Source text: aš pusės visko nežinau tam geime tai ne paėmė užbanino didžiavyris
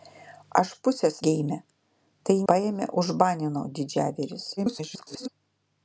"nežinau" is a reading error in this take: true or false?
true